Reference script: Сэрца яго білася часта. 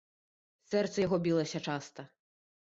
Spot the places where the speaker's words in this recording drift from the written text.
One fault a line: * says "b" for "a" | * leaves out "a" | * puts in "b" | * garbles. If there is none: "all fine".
all fine